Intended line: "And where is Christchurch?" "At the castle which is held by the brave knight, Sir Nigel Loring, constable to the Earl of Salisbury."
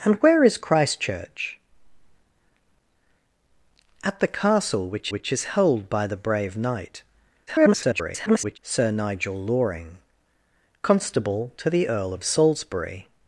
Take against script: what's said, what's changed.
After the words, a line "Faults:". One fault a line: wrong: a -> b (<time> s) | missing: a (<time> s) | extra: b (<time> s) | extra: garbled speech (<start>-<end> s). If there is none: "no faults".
"And where is Christchurch?" "At the castle which which is held by the brave knight, [garbled] Sir Nigel Loring, constable to the Earl of Salisbury."
Faults:
extra: which (5.1 s)
extra: garbled speech (7.5-8.6 s)